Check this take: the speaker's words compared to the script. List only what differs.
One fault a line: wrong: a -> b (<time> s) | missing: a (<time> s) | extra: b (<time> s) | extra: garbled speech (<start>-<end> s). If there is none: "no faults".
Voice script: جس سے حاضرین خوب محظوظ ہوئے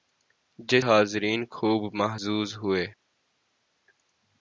missing: سے (0.8 s)